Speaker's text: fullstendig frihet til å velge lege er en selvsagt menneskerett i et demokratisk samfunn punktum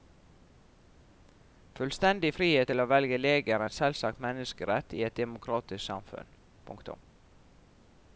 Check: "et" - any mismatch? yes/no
no